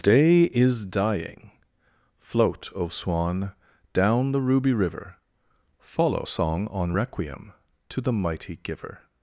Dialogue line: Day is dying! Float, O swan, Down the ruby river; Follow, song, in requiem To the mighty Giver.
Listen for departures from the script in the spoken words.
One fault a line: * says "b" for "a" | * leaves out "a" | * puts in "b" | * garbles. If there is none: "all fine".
* says "on" for "in"